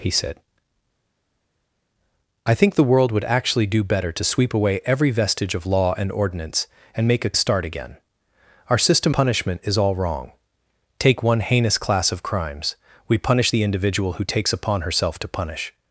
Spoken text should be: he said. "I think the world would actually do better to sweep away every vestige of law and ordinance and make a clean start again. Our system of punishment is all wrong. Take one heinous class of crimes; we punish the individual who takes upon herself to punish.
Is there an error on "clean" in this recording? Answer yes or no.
yes